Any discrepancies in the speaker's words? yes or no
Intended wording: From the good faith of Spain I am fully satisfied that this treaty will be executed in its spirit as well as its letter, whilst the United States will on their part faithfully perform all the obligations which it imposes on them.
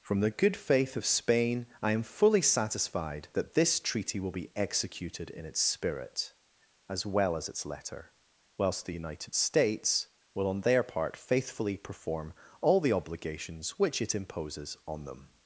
no